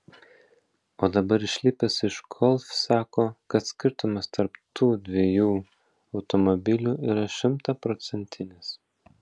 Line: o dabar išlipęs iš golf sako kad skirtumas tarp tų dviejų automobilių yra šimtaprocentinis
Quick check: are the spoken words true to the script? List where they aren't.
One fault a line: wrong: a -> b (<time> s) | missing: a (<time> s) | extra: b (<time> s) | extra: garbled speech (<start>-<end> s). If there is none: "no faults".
no faults